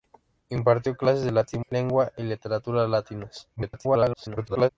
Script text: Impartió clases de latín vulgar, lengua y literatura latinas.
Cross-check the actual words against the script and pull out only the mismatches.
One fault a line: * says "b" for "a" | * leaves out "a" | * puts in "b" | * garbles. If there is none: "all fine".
* leaves out "vulgar"
* garbles